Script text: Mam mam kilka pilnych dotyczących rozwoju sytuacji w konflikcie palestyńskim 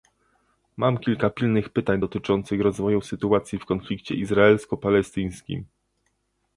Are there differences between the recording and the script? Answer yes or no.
yes